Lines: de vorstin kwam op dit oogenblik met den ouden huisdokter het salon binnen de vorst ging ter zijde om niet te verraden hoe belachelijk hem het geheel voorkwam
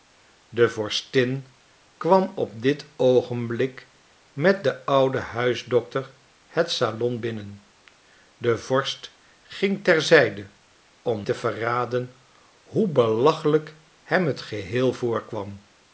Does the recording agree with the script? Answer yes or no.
no